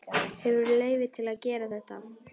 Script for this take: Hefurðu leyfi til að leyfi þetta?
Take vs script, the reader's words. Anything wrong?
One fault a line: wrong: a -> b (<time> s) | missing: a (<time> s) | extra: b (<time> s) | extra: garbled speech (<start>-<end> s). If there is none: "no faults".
wrong: leyfi -> gera (1.5 s)